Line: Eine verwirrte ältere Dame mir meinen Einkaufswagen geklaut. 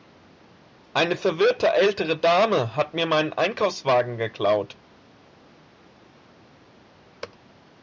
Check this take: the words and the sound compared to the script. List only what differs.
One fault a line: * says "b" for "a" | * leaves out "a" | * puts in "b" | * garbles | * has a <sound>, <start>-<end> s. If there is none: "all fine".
* puts in "hat"